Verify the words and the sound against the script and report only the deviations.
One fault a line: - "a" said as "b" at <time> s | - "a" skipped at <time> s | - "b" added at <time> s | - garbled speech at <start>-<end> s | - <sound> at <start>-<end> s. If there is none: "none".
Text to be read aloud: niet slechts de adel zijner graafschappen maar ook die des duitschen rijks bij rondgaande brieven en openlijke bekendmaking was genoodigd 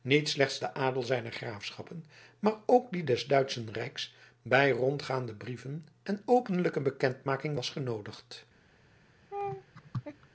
- laugh at 9.3-10.3 s